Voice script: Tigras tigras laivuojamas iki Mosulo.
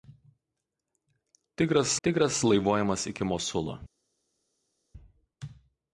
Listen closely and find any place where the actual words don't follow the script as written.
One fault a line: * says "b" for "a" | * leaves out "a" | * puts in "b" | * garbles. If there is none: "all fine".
all fine